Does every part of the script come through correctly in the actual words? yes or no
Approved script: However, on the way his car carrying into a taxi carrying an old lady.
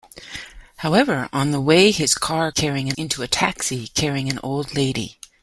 yes